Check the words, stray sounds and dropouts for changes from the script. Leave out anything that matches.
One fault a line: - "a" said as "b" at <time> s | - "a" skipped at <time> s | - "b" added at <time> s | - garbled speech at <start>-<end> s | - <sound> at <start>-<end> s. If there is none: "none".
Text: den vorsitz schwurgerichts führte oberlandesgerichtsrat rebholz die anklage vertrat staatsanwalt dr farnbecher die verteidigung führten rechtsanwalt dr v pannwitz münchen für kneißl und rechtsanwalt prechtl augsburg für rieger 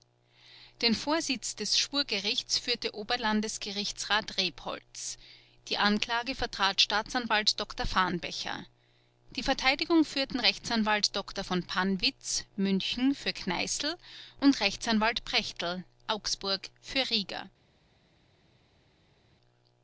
- "des" added at 1.6 s